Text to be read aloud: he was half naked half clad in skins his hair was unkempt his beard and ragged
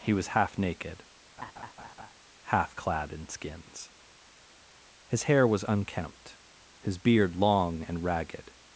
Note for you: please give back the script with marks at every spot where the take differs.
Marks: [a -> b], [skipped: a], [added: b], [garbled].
he was half naked half clad in skins his hair was unkempt his beard [added: long] and ragged